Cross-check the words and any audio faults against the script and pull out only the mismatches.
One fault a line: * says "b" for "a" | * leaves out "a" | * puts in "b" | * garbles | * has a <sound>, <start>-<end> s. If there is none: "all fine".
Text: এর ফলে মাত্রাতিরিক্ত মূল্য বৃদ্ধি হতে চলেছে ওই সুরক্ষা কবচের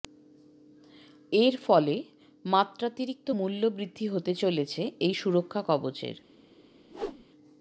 * says "এই" for "ওই"
* has a whoosh, 6.9-7.2 s